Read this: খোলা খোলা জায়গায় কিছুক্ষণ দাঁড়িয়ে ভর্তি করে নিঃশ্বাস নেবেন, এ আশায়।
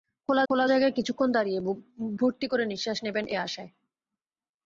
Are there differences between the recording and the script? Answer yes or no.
no